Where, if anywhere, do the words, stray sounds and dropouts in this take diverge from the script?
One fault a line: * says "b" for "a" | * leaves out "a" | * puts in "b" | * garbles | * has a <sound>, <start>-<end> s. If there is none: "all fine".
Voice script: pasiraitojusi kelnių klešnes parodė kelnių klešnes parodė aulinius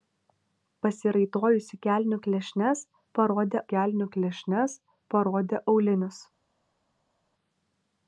all fine